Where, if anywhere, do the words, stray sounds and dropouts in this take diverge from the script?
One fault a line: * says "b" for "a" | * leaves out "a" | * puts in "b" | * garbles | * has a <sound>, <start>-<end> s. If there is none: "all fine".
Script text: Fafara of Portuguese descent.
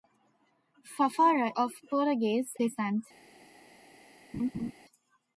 * has a laugh, 4.3-4.7 s